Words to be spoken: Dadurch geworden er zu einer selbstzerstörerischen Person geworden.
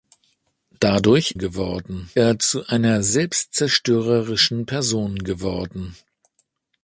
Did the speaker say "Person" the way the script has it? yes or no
yes